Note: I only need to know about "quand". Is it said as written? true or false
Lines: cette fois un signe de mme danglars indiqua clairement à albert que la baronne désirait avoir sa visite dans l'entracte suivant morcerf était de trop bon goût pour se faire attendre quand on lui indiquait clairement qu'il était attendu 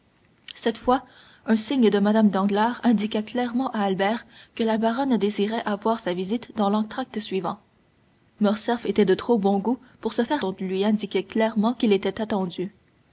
false